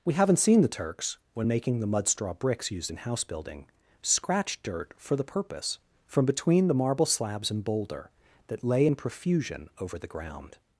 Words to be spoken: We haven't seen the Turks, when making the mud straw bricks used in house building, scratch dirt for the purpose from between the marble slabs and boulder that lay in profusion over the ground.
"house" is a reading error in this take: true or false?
false